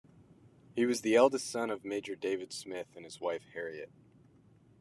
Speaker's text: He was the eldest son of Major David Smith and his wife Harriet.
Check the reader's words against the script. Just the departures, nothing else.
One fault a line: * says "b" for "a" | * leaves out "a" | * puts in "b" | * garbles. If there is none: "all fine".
all fine